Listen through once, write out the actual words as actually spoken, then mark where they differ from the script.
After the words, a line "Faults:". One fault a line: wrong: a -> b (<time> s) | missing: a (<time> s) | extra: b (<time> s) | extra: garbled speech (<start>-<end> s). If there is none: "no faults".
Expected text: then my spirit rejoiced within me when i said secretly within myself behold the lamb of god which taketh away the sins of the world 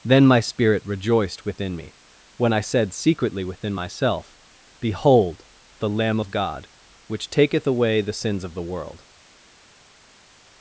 then my spirit rejoiced within me when i said secretly within myself behold the lamb of god which taketh away the sins of the world
Faults:
no faults